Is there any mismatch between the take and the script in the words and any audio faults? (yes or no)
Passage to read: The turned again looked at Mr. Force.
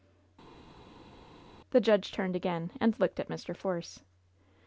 yes